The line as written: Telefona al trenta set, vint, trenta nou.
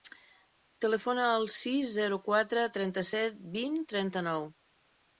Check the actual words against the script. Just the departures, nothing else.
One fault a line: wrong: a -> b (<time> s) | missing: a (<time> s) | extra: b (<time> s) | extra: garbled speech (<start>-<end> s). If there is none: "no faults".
extra: sis zero quatre (1.6 s)